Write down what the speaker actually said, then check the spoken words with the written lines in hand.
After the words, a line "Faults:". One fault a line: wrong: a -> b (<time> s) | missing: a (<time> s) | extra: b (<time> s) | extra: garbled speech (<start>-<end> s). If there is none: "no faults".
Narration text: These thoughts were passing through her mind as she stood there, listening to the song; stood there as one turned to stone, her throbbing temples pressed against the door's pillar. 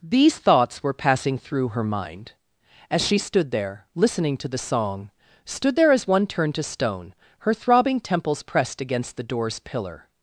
These thoughts were passing through her mind as she stood there, listening to the song; stood there as one turned to stone, her throbbing temples pressed against the door's pillar.
Faults:
no faults